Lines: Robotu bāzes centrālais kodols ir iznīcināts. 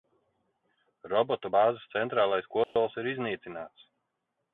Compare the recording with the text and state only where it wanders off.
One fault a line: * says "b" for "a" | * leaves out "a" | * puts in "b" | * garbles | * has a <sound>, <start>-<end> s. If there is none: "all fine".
* has a dropout, 2.6-2.8 s